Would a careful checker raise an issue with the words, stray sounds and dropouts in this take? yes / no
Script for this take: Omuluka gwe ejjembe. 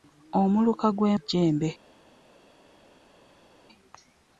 no